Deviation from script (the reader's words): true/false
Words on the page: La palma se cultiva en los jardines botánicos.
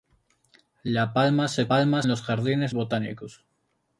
true